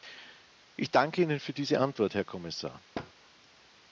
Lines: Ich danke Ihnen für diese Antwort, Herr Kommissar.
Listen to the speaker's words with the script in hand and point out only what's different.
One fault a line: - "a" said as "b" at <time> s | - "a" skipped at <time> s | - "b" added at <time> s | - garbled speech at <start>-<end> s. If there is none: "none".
none